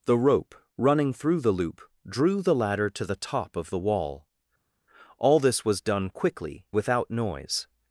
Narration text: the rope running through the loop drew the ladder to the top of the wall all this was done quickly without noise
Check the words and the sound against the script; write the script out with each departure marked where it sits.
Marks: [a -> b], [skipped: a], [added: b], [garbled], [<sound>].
the rope running through the loop drew the ladder to the top of the wall all this was done quickly without noise